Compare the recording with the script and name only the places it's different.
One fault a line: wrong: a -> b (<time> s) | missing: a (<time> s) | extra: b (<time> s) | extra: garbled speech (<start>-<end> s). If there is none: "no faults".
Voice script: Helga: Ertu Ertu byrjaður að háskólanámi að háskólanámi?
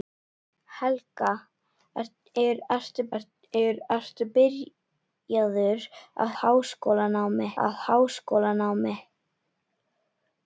no faults